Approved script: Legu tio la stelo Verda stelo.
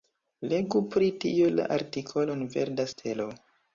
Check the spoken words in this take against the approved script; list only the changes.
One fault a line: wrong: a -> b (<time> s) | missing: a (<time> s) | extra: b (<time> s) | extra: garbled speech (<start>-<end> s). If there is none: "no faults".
extra: pri (0.9 s)
wrong: stelo -> artikolon (1.8 s)